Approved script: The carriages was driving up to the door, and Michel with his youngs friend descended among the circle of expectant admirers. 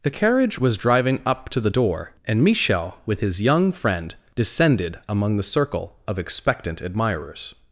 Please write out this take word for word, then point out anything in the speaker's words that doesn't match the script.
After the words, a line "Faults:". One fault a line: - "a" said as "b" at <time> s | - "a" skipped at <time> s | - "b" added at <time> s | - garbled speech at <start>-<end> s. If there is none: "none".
The carriage was driving up to the door, and Michel with his young friend descended among the circle of expectant admirers.
Faults:
- "carriages" said as "carriage" at 0.1 s
- "youngs" said as "young" at 3.4 s